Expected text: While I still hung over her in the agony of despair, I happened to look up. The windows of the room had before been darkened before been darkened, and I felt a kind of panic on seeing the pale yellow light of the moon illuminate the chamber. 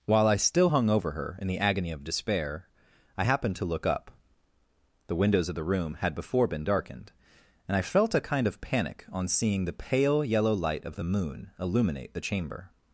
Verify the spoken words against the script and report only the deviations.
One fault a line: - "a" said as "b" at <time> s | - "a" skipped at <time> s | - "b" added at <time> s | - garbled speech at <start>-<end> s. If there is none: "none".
- "before been darkened" skipped at 7.1 s